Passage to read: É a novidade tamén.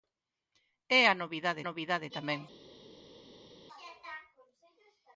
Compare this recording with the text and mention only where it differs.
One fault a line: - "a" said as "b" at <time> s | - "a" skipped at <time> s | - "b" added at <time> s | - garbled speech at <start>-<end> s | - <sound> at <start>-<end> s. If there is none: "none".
- "novidade" added at 1.7 s